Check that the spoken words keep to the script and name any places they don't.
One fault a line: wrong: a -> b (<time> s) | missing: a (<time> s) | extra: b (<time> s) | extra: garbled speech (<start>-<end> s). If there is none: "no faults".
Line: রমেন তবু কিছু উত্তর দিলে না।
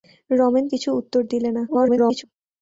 missing: তবু (0.7 s)
extra: garbled speech (1.7-2.2 s)